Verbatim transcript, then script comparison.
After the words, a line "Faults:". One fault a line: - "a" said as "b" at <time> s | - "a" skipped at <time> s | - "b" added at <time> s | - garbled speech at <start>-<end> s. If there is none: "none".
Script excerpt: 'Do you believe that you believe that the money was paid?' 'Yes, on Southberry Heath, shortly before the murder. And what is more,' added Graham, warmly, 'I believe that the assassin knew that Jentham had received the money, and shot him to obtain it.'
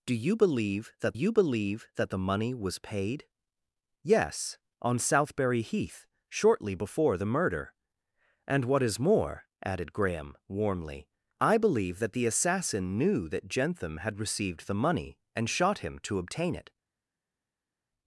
'Do you believe that you believe that the money was paid?' 'Yes, on Southberry Heath, shortly before the murder. And what is more,' added Graham, warmly, 'I believe that the assassin knew that Jentham had received the money, and shot him to obtain it.'
Faults:
none